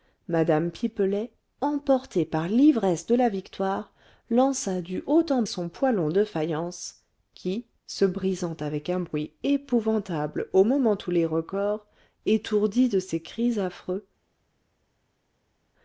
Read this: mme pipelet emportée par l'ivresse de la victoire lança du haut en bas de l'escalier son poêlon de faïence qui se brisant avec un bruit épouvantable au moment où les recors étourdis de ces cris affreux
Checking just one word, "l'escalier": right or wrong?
wrong